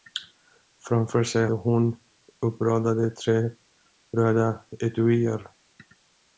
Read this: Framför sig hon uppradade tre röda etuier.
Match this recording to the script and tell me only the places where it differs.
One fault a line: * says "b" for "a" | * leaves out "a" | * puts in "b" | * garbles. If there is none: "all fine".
all fine